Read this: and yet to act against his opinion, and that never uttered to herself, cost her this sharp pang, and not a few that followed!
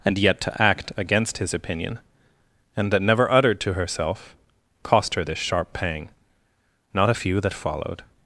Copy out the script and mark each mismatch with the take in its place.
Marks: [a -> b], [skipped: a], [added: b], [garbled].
and yet to act against his opinion, and that never uttered to herself, cost her this sharp pang, [skipped: and] not a few that followed!